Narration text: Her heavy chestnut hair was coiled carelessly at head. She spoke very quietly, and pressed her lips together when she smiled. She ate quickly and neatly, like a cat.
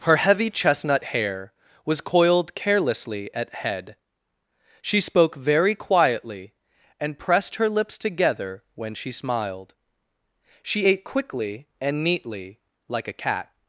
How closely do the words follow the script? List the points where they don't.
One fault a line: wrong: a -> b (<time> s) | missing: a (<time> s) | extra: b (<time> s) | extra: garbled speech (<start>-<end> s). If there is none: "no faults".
no faults